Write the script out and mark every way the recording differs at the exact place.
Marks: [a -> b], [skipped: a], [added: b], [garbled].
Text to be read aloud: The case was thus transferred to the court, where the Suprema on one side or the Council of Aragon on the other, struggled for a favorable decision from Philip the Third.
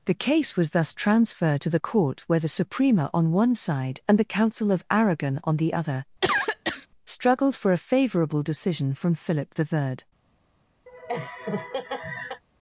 The case was thus transferred to the court, where the Suprema on one side [or -> and] the Council of Aragon on the other, struggled for a favorable decision from Philip the Third.